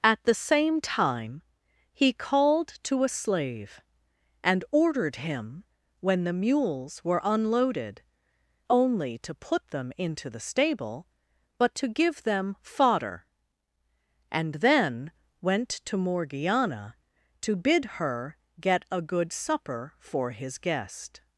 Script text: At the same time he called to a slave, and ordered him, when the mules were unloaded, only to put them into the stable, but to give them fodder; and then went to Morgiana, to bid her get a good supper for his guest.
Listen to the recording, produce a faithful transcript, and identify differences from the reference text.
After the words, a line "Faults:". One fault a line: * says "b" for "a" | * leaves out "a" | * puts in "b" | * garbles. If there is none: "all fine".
At the same time he called to a slave, and ordered him, when the mules were unloaded, only to put them into the stable, but to give them fodder; and then went to Morgiana, to bid her get a good supper for his guest.
Faults:
all fine